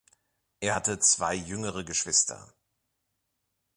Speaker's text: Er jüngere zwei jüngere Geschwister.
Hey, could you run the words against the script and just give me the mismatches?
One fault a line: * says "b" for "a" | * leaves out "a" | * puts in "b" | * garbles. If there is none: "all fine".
* says "hatte" for "jüngere"